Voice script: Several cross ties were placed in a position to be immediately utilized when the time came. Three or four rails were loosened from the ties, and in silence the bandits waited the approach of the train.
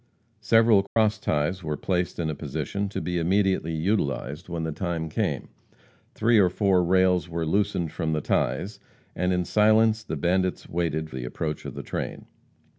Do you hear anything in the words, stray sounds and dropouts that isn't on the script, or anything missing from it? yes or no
yes